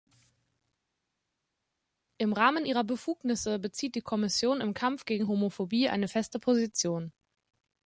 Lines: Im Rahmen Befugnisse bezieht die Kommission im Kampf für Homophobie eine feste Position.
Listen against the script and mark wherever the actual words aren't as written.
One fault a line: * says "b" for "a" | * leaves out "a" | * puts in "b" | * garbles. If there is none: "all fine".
* puts in "ihrer"
* says "gegen" for "für"